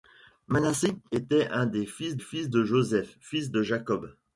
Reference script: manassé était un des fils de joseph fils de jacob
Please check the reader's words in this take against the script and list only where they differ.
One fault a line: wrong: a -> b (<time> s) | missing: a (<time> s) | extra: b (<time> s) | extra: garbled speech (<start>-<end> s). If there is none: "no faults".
extra: fils (2.2 s)